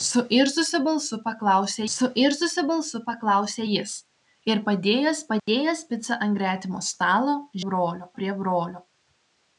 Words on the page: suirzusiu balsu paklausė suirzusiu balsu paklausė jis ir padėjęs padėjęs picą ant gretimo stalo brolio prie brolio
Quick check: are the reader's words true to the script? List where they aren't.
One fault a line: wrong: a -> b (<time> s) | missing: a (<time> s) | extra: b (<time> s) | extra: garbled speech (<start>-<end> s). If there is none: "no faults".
no faults